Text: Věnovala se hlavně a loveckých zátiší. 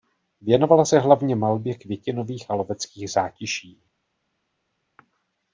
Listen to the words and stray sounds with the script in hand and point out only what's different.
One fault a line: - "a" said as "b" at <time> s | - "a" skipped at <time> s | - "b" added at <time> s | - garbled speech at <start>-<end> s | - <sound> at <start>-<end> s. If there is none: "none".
- "malbě květinových" added at 1.3 s